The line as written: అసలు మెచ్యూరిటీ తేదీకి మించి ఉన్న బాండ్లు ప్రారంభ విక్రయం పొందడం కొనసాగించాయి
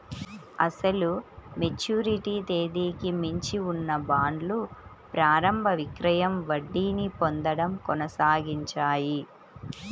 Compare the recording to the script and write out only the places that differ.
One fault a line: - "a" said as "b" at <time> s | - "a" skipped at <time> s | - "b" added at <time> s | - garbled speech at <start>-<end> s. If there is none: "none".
- "వడ్డీని" added at 6.5 s